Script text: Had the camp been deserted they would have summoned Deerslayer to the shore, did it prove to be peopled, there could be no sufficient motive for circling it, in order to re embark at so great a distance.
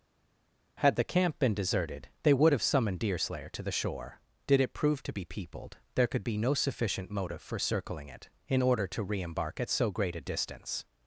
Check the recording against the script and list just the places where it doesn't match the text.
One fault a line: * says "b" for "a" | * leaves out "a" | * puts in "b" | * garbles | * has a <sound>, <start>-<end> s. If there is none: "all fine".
all fine